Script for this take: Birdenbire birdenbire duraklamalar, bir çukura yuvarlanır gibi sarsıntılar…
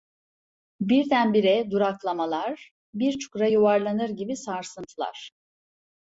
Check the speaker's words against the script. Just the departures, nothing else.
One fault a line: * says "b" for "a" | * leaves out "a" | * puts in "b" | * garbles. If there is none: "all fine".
* leaves out "birdenbire"